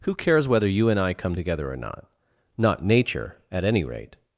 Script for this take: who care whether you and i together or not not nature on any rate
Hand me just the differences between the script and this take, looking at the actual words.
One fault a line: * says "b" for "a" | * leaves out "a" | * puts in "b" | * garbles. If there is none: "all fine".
* says "cares" for "care"
* puts in "come"
* says "at" for "on"